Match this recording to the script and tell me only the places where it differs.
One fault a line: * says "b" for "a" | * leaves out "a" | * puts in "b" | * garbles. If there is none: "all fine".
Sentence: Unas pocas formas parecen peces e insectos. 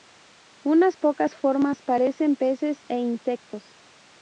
all fine